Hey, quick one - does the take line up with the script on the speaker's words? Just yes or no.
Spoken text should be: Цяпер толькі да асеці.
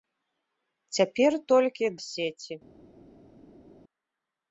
no